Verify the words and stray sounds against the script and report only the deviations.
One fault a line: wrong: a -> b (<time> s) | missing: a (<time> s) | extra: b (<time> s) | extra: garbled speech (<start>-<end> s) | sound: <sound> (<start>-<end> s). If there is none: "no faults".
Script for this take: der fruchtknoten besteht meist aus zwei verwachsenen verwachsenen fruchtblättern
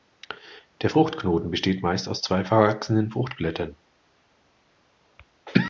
missing: verwachsenen (3.1 s)